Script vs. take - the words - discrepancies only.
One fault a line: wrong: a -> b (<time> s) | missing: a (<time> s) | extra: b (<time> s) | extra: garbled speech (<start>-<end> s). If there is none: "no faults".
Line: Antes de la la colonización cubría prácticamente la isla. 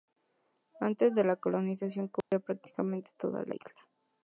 missing: la (1.4 s)
extra: toda (3.2 s)